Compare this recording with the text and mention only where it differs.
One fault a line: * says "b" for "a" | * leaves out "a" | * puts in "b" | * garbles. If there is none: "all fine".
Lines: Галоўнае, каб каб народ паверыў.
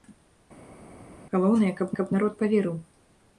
all fine